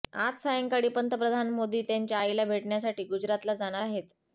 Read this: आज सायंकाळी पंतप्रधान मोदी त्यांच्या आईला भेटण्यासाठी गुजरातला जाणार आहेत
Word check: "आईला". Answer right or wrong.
right